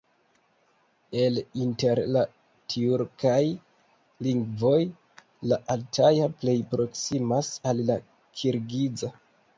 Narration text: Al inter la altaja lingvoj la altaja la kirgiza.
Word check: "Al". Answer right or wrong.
wrong